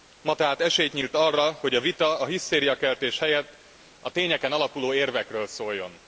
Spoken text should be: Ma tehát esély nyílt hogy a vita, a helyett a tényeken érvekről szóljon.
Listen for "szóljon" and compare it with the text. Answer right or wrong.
right